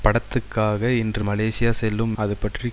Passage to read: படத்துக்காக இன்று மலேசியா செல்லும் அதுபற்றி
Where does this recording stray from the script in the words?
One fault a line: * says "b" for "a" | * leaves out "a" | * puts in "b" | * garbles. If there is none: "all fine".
all fine